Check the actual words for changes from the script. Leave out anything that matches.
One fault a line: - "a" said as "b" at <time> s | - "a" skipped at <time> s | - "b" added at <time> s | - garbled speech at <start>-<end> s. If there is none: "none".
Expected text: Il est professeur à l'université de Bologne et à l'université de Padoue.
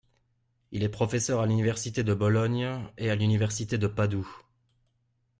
none